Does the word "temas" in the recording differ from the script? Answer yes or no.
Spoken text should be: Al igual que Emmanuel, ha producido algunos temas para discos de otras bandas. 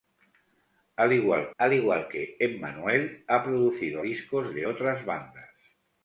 yes